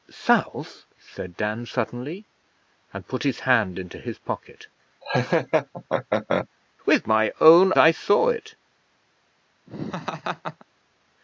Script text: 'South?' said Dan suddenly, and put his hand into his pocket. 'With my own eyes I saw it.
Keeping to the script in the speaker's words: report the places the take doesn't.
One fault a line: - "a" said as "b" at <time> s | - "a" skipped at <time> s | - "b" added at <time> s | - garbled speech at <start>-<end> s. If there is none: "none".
- "eyes" skipped at 7.7 s